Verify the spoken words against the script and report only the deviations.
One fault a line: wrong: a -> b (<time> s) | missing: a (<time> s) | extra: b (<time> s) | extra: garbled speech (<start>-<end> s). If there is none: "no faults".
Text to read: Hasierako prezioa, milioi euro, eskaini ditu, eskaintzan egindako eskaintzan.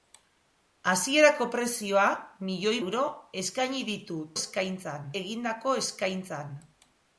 no faults